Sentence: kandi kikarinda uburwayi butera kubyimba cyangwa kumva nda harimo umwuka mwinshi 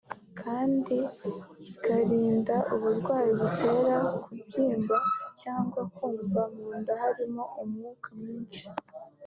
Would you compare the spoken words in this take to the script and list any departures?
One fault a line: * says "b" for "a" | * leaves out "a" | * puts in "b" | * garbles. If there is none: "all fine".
* puts in "mu"